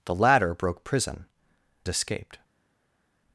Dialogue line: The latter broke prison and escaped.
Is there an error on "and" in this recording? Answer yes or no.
yes